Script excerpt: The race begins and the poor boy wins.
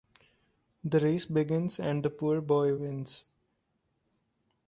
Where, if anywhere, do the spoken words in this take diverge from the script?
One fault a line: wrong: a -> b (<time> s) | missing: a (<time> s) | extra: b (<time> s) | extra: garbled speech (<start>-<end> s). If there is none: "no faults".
no faults